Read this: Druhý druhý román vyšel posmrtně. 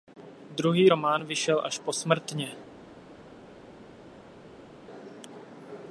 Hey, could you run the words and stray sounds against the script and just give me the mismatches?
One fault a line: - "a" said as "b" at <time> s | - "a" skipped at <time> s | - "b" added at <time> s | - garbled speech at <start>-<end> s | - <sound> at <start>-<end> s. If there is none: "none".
- "druhý" skipped at 0.9 s
- "až" added at 1.6 s